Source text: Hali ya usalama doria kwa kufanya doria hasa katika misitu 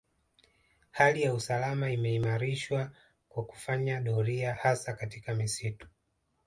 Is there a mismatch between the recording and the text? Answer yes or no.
yes